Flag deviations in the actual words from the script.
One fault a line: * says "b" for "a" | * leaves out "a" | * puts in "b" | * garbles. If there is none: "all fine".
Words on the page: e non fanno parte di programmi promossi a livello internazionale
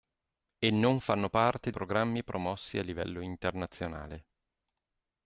* leaves out "di"